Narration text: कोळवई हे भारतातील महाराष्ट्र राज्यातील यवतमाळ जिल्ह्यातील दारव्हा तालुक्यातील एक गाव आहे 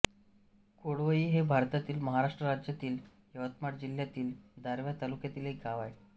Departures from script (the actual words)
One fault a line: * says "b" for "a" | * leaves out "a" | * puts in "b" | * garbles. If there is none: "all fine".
all fine